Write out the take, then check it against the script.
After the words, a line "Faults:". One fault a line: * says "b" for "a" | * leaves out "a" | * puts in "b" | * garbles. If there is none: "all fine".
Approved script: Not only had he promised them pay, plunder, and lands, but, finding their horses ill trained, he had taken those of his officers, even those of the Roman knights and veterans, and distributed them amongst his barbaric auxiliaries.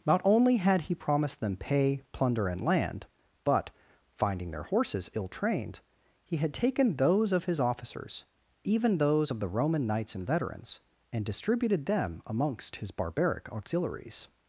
Not only had he promised them pay, plunder, and land, but, finding their horses ill trained, he had taken those of his officers, even those of the Roman knights and veterans, and distributed them amongst his barbaric auxiliaries.
Faults:
* says "land" for "lands"